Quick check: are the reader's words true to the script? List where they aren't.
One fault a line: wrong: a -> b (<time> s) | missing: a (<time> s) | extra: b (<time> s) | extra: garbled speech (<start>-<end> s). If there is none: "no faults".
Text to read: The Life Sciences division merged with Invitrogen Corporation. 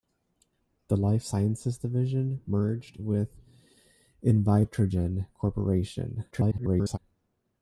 extra: garbled speech (6.3-7.0 s)